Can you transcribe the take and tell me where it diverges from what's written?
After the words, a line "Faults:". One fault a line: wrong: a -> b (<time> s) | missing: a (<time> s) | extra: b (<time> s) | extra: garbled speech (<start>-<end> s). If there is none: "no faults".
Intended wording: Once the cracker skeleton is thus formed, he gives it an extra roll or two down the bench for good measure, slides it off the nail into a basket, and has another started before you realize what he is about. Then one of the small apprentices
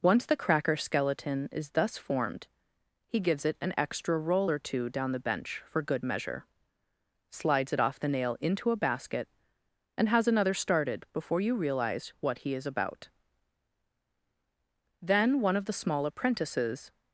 Once the cracker skeleton is thus formed, he gives it an extra roll or two down the bench for good measure, slides it off the nail into a basket, and has another started before you realize what he is about. Then one of the small apprentices
Faults:
no faults